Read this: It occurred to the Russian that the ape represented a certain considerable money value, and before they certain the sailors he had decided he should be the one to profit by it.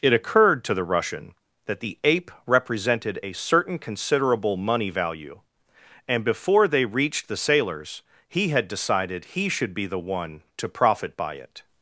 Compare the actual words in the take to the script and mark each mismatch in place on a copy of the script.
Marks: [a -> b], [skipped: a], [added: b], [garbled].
It occurred to the Russian that the ape represented a certain considerable money value, and before they [certain -> reached] the sailors he had decided he should be the one to profit by it.